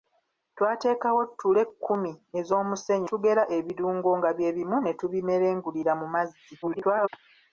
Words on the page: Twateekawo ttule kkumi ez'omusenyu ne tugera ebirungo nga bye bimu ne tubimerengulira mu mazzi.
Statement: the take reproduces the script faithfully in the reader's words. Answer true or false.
false